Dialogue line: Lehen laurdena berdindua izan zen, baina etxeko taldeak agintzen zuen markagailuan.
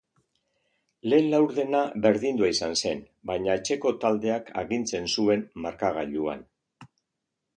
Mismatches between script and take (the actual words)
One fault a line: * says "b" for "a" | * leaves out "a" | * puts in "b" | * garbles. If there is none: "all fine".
all fine